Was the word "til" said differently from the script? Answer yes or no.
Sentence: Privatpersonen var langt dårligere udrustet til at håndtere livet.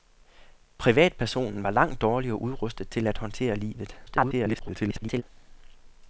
no